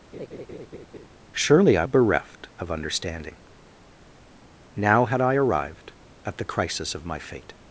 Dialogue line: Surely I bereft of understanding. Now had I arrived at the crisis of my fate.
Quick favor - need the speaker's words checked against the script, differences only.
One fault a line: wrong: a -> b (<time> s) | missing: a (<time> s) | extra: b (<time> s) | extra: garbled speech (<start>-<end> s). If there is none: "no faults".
no faults